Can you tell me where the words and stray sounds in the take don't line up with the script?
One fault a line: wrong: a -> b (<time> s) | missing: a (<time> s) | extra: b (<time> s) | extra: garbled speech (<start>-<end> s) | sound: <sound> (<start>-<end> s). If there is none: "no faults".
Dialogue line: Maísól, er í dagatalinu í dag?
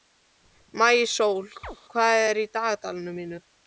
sound: chirp (1.6-1.8 s)
extra: hvað (1.9 s)
extra: mínu (3.2 s)